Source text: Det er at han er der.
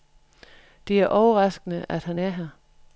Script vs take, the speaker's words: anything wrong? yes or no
yes